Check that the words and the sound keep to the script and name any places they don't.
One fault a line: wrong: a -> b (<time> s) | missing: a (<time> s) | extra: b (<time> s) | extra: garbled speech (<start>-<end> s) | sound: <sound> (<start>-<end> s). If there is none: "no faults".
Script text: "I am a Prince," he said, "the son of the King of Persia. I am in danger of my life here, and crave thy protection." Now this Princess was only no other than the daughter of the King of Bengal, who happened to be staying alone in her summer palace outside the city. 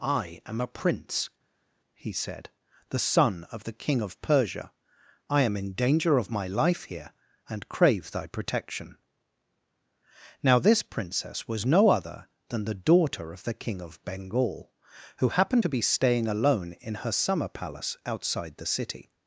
missing: only (11.6 s)